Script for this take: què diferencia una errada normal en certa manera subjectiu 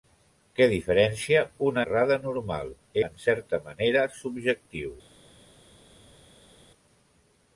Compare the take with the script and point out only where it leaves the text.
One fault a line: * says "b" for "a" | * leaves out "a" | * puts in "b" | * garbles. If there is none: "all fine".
all fine